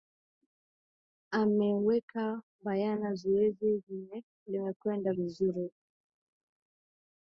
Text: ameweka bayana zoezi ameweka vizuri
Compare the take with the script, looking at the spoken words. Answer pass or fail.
fail